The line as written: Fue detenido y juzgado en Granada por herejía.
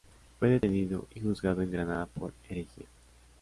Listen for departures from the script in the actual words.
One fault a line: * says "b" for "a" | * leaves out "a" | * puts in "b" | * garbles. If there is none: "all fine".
all fine